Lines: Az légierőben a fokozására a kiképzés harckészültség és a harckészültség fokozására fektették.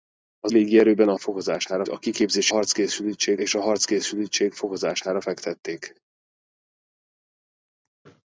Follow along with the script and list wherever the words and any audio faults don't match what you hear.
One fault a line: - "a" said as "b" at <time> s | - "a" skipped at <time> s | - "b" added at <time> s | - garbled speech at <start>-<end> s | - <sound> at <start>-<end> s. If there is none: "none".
none